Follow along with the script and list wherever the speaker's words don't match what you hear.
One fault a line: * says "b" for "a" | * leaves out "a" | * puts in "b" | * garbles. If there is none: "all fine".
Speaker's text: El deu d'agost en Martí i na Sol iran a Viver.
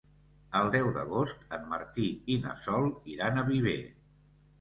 all fine